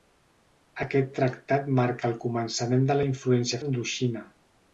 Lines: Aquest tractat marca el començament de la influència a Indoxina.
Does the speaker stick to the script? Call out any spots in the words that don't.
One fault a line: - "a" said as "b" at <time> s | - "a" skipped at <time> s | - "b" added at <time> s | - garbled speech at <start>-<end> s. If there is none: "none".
none